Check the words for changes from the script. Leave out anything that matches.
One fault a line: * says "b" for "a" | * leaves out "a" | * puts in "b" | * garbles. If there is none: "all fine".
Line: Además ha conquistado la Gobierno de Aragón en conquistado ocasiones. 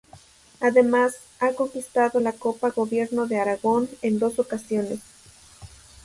* puts in "Copa"
* says "dos" for "conquistado"